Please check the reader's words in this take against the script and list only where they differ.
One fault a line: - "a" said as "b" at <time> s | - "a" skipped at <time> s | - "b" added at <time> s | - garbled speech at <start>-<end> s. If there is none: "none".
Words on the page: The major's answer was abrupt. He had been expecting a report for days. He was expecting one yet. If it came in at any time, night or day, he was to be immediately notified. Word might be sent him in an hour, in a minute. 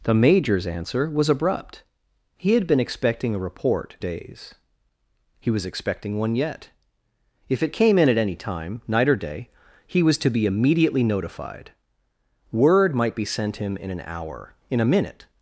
- "for" skipped at 4.0 s